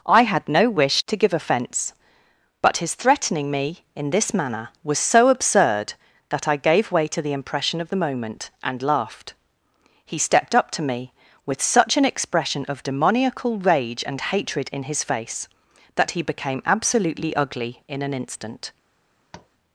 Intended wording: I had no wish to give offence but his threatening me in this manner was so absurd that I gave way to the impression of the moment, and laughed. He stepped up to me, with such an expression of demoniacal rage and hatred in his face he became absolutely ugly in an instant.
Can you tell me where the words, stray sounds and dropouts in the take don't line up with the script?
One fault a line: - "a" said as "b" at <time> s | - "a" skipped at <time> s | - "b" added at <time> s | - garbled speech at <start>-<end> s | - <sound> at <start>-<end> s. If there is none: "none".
- "that" added at 16.0 s
- tap at 19.3-19.5 s